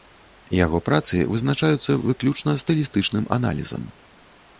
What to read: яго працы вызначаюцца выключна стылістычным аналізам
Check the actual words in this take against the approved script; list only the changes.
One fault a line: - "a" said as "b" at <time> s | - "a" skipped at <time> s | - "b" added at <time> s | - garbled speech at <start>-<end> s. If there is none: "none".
none